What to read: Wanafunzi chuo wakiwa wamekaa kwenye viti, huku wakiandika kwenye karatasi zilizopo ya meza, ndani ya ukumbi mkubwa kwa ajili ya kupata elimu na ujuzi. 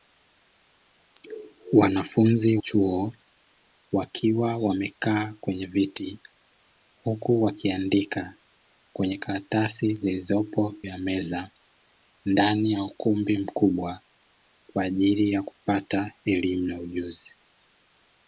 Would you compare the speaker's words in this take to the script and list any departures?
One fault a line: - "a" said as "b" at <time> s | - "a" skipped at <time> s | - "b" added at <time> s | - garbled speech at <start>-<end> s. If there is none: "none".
none